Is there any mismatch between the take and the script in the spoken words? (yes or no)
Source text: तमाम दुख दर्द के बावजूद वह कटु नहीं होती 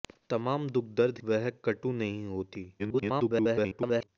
yes